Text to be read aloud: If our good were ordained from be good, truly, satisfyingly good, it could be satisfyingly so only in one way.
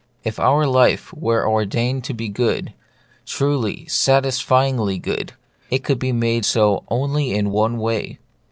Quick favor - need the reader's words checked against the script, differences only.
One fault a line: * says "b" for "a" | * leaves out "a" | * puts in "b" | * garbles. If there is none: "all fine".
* says "life" for "good"
* says "to" for "from"
* says "made" for "satisfyingly"